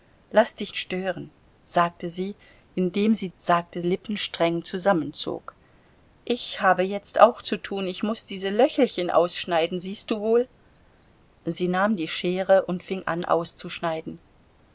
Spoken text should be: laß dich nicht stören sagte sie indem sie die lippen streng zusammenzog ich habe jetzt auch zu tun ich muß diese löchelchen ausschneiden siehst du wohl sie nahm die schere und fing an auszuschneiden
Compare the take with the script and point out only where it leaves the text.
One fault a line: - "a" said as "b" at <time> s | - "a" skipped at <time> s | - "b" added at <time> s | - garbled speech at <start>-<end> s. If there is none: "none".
- "nicht" skipped at 0.7 s
- "die" said as "sagte" at 3.3 s